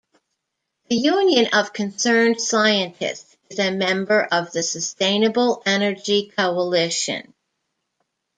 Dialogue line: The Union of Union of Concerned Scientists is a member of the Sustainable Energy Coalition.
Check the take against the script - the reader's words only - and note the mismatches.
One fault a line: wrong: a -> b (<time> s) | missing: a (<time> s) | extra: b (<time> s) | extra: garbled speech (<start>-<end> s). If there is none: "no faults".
missing: Union of (1.7 s)